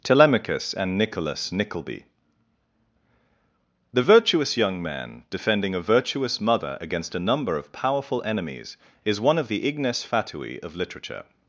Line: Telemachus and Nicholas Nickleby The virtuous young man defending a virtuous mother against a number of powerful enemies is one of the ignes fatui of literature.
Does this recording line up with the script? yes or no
yes